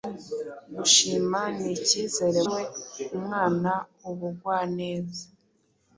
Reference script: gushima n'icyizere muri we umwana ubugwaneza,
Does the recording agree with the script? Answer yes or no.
no